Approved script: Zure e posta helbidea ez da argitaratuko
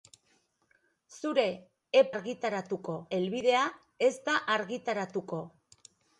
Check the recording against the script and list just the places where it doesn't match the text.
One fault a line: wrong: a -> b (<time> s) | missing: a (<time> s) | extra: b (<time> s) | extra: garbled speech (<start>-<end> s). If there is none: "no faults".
wrong: posta -> argitaratuko (2.2 s)